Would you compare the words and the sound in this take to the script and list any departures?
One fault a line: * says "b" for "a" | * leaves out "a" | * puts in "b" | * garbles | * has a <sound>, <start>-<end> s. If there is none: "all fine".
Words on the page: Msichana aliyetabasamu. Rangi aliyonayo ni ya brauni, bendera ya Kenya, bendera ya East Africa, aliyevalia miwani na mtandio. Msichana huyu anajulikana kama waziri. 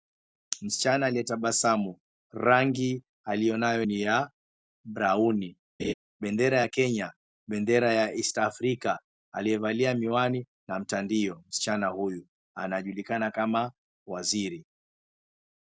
* has a laugh, 5.8-5.9 s